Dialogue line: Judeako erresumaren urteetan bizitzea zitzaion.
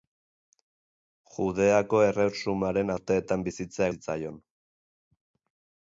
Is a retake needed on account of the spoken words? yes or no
no